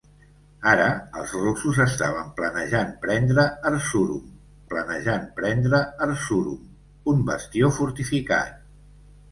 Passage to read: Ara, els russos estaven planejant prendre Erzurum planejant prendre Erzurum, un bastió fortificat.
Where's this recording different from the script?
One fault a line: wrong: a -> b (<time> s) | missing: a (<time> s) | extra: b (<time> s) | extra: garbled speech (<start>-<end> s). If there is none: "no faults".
no faults